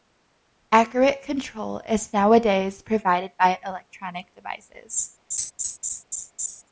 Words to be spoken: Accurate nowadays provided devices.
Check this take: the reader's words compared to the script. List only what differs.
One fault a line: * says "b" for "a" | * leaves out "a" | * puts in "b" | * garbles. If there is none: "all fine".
* puts in "control is"
* puts in "by electronic"